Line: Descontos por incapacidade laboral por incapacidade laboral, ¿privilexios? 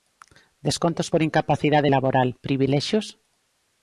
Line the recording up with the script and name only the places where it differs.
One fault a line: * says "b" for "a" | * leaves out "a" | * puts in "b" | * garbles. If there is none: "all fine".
* leaves out "por incapacidade laboral"